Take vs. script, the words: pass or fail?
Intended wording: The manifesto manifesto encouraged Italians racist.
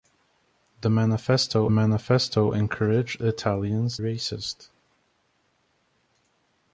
pass